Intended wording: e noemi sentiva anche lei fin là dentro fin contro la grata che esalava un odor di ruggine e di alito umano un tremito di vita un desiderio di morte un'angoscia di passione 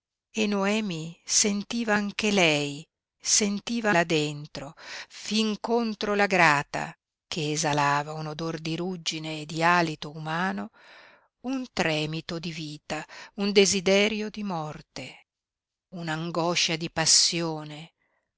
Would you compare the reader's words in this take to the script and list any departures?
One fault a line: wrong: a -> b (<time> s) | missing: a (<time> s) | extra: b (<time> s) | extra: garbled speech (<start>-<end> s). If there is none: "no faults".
wrong: fin -> sentiva (3.2 s)